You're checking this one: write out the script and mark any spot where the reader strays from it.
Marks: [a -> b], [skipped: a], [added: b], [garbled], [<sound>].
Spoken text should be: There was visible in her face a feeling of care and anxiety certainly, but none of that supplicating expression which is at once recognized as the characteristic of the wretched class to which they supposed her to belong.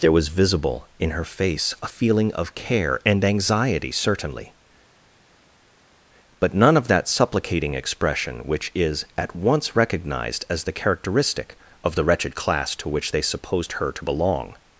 There was visible in her face a feeling of care and anxiety certainly, but none of that supplicating expression which is at once recognized as the characteristic of the wretched class to which they supposed her to belong.